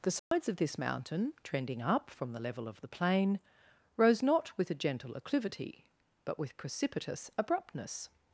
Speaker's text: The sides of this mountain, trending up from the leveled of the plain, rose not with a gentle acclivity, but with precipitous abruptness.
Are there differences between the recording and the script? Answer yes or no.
yes